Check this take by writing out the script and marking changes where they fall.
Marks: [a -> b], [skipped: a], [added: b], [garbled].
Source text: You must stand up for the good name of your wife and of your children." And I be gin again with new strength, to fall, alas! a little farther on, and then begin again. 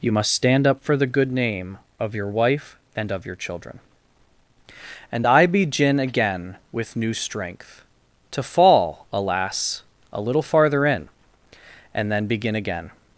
You must stand up for the good name of your wife and of your children." And I be gin again with new strength, to fall, alas! a little farther [on, -> in] and then begin again.